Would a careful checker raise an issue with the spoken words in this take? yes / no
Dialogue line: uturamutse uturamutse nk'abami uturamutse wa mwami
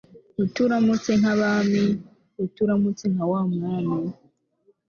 yes